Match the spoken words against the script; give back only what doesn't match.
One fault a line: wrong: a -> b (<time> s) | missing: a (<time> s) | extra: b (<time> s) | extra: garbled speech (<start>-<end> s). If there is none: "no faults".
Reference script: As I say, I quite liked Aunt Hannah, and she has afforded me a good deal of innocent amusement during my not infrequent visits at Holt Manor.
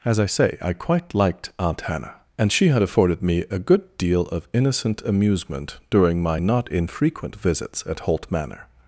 wrong: has -> had (2.7 s)